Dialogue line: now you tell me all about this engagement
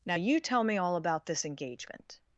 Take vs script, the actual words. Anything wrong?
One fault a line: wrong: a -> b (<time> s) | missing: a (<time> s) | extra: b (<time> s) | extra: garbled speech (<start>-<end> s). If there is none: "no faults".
no faults